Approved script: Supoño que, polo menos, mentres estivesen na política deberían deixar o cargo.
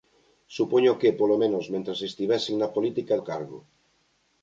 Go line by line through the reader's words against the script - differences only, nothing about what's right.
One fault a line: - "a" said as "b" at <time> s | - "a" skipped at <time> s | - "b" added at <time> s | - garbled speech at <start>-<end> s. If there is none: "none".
- "deberían deixar" skipped at 3.2 s